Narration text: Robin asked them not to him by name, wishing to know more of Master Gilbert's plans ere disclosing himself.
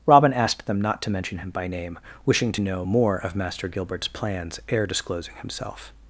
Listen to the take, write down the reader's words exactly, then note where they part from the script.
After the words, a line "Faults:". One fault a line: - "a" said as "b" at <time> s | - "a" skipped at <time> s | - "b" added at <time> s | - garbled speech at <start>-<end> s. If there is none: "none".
Robin asked them not to mention him by name, wishing to know more of Master Gilbert's plans ere disclosing himself.
Faults:
- "mention" added at 1.1 s